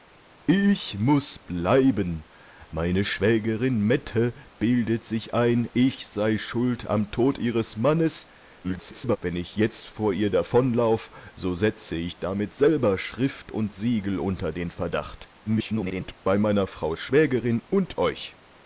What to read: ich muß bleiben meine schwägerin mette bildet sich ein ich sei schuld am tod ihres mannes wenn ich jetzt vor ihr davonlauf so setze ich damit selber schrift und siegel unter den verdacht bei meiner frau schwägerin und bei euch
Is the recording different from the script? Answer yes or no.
yes